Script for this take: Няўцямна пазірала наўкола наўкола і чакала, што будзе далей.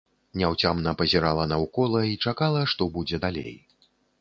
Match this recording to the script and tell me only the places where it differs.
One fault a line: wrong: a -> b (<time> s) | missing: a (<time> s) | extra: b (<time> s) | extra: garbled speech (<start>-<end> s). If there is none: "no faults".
missing: наўкола (2.0 s)